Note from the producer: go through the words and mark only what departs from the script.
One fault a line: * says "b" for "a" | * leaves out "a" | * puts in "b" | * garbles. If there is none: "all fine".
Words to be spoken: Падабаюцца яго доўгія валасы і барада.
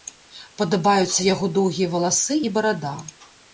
all fine